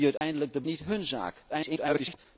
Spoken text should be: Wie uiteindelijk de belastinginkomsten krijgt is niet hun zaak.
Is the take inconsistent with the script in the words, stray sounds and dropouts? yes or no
yes